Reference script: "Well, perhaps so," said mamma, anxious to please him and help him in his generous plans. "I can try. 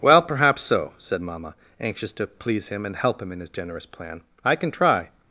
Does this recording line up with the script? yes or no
no